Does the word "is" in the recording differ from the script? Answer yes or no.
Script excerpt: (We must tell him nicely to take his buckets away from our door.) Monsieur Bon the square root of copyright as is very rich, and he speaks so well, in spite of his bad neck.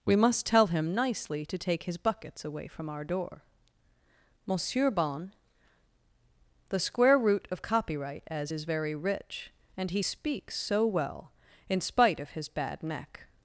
no